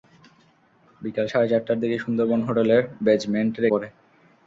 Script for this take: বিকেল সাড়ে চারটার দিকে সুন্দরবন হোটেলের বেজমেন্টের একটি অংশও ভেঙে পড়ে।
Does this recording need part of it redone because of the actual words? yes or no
yes